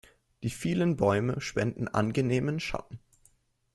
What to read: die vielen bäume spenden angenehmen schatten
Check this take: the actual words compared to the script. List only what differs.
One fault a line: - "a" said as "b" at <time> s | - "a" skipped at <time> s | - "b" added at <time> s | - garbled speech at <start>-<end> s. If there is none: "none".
none